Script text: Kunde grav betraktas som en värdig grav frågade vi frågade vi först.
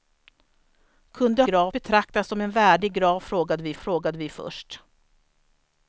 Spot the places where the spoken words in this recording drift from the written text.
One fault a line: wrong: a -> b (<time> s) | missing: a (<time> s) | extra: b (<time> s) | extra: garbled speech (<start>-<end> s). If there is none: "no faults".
no faults